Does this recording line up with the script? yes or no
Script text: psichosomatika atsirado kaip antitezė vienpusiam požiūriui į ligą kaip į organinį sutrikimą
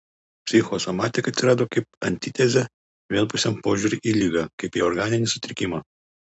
yes